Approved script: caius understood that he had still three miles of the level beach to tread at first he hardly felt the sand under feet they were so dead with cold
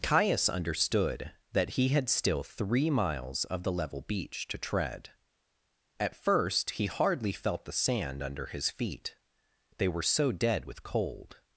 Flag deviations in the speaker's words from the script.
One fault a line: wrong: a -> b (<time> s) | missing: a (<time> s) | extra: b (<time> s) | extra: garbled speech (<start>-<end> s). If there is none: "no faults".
extra: his (8.5 s)